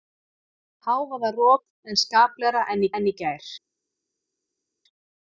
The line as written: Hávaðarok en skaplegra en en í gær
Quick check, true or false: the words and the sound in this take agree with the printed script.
true